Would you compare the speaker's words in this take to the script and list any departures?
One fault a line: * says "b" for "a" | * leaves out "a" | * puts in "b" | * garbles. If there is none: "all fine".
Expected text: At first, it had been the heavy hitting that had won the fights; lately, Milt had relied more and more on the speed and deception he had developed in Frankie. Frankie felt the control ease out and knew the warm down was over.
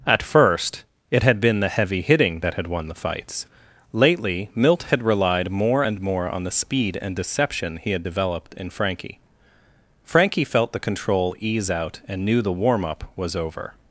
* says "up" for "down"